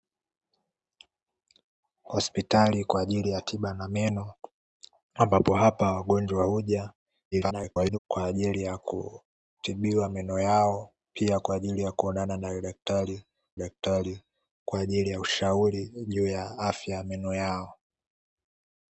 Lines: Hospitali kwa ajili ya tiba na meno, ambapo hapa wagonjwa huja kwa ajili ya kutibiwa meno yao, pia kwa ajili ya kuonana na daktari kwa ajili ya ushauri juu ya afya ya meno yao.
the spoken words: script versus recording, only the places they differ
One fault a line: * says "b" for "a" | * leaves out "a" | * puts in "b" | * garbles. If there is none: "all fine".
* garbles
* puts in "daktari"